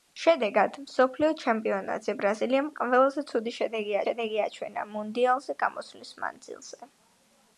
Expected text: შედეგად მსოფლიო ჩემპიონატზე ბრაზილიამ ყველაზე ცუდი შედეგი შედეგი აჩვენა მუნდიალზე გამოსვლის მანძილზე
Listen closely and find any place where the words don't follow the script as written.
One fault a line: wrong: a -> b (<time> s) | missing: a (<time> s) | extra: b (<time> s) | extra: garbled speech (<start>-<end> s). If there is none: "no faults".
no faults